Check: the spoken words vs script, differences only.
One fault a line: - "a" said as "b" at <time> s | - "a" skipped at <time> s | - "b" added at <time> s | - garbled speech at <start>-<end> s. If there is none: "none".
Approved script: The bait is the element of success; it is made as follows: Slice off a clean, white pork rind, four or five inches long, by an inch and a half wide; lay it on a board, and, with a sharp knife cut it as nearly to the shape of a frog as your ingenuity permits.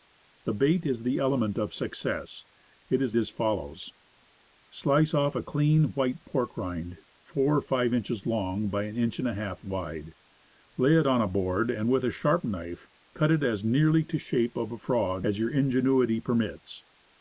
- "made" skipped at 3.1 s